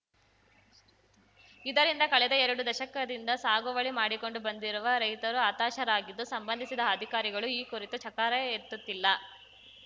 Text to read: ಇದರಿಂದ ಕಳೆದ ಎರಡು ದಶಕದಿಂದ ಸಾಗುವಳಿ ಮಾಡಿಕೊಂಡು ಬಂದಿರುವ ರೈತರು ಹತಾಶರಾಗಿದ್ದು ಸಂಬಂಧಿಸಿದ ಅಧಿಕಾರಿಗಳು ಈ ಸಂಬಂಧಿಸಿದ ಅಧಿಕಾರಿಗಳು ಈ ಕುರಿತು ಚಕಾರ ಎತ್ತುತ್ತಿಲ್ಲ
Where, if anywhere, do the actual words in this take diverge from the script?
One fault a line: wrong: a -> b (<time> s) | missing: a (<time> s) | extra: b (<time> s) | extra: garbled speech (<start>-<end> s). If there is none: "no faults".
missing: ಸಂಬಂಧಿಸಿದ ಅಧಿಕಾರಿಗಳು ಈ (7.6 s)